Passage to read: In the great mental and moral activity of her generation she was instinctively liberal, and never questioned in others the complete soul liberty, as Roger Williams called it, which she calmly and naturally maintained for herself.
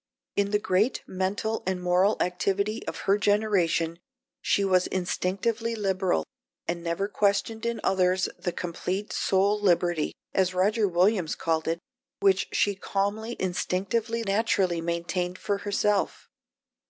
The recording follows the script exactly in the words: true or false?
false